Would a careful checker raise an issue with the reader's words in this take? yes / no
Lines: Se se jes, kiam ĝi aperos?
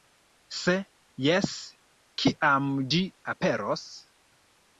yes